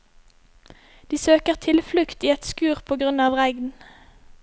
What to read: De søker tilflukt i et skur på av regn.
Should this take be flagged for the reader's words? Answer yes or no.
yes